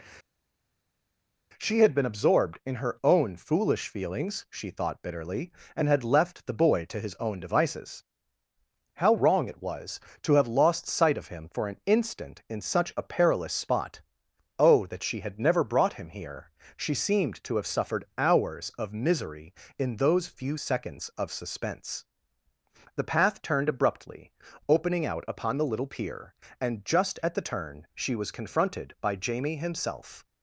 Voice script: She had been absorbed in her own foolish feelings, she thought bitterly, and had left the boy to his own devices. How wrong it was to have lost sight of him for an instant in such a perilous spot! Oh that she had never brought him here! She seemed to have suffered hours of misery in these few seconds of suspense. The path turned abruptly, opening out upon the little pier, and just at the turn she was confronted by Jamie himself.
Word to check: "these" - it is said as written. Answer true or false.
false